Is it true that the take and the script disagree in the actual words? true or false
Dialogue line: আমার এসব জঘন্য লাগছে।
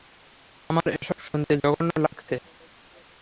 true